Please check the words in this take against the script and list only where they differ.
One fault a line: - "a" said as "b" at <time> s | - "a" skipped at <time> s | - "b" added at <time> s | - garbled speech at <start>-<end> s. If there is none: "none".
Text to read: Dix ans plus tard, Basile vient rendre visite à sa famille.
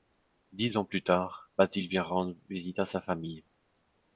none